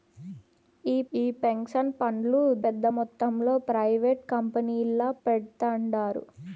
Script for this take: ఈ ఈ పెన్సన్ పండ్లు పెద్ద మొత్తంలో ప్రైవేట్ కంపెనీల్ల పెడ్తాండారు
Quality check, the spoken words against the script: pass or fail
pass